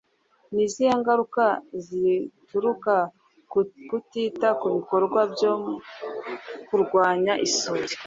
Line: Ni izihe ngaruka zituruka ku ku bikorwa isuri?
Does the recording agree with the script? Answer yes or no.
no